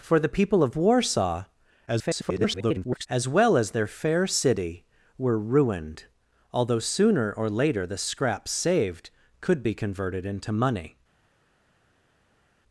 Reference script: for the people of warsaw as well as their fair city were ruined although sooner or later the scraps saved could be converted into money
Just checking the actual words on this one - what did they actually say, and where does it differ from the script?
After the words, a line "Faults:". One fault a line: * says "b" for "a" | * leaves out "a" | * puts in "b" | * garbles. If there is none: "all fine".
for the people of warsaw [garbled] as well as their fair city were ruined although sooner or later the scraps saved could be converted into money
Faults:
* garbles